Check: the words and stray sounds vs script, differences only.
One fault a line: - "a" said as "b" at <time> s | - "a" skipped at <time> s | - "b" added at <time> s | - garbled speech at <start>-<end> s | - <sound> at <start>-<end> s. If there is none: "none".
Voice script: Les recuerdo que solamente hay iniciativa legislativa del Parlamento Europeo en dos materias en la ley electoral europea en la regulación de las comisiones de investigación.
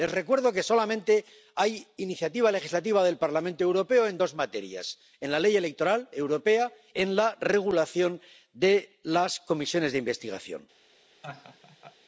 - laugh at 11.2-12.0 s